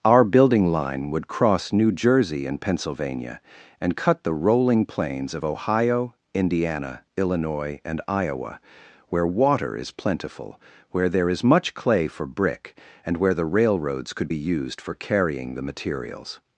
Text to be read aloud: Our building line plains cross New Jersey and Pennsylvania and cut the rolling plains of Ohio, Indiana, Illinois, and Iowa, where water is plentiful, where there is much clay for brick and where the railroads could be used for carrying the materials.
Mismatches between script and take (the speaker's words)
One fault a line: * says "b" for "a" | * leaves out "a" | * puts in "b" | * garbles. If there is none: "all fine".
* says "would" for "plains"